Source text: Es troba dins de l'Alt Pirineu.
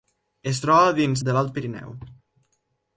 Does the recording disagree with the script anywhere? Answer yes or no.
no